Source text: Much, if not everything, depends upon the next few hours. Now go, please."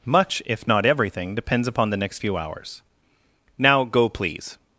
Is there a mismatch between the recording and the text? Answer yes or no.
no